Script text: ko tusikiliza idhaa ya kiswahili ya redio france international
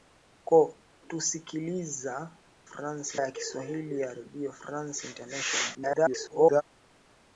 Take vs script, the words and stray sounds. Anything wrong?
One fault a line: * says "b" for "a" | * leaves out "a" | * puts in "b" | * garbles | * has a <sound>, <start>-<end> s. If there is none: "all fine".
* says "france" for "idhaa"
* garbles